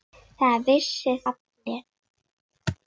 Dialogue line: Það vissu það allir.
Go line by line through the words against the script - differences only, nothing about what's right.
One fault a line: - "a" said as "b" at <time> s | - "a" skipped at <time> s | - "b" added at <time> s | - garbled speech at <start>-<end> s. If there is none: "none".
- "það" skipped at 1.1 s